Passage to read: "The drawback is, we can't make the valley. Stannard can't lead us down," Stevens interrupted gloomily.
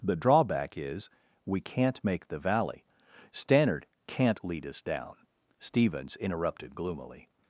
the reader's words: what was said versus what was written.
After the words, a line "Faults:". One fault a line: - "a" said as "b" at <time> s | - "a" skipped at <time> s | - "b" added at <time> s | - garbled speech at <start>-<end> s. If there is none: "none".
"The drawback is, we can't make the valley. Stannard can't lead us down," Stevens interrupted gloomily.
Faults:
none